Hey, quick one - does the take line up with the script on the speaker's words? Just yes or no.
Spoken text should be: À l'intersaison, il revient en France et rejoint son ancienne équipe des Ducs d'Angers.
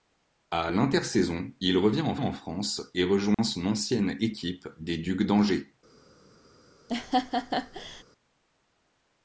no